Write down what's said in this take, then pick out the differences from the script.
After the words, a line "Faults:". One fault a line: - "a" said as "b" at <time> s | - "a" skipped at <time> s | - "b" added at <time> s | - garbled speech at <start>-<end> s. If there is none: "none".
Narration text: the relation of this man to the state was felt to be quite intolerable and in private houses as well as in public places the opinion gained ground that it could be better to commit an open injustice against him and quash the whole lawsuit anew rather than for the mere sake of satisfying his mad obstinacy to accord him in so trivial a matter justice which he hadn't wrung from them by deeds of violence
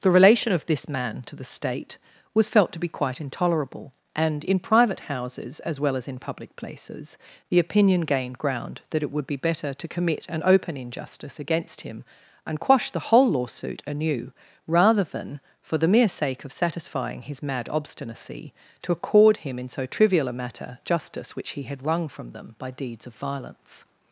the relation of this man to the state was felt to be quite intolerable and in private houses as well as in public places the opinion gained ground that it would be better to commit an open injustice against him and quash the whole lawsuit anew rather than for the mere sake of satisfying his mad obstinacy to accord him in so trivial a matter justice which he had wrung from them by deeds of violence
Faults:
- "could" said as "would" at 9.1 s
- "hadn't" said as "had" at 21.6 s